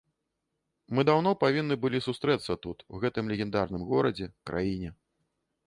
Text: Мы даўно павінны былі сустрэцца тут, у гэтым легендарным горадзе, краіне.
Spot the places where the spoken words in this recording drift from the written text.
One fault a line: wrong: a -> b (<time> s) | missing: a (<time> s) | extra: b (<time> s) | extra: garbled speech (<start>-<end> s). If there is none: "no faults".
no faults